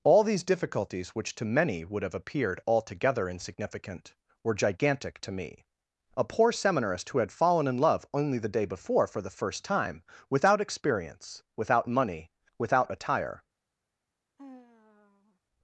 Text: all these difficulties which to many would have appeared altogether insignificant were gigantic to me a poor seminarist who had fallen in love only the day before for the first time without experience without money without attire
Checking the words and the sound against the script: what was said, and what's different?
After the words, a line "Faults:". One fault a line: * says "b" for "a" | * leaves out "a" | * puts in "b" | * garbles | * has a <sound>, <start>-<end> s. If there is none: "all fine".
all these difficulties which to many would have appeared altogether insignificant were gigantic to me a poor seminarist who had fallen in love only the day before for the first time without experience without money without attire
Faults:
* has a sigh, 14.4-15.4 s